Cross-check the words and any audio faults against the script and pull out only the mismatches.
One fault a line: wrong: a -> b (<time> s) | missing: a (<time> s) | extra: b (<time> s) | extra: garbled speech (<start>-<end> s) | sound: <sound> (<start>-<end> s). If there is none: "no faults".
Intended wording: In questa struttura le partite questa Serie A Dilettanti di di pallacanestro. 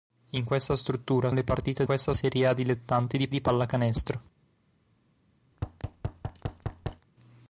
sound: thud (5.5-7.1 s)